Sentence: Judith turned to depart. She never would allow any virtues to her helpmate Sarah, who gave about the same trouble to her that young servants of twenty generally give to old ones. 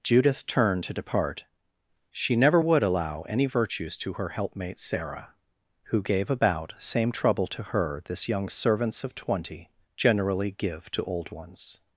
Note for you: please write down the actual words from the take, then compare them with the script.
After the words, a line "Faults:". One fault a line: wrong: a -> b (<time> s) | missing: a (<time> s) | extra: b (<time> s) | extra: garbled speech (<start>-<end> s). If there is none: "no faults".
Judith turned to depart. She never would allow any virtues to her helpmate Sarah, who gave about same trouble to her this young servants of twenty generally give to old ones.
Faults:
missing: the (6.7 s)
wrong: that -> this (8.1 s)